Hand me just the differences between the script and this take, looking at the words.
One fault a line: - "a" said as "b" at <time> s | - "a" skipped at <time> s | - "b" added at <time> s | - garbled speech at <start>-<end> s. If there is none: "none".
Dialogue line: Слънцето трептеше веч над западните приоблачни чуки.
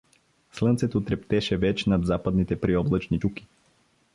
none